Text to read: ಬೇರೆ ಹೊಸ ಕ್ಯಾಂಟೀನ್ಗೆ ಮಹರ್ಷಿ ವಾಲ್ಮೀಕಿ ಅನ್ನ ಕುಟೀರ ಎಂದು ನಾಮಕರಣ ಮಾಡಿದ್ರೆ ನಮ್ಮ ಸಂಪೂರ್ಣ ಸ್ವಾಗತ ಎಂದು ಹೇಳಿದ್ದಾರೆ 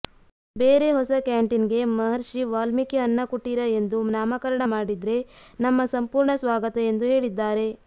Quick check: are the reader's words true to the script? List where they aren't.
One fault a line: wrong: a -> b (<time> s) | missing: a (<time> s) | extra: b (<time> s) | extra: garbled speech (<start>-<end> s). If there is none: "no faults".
no faults